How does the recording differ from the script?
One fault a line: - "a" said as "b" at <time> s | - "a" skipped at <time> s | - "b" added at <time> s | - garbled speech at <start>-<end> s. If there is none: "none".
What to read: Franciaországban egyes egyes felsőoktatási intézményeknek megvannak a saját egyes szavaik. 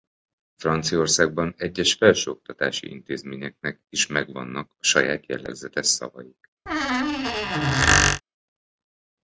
- "egyes" skipped at 1.9 s
- "is" added at 3.9 s
- "egyes" said as "jellegzetes" at 5.3 s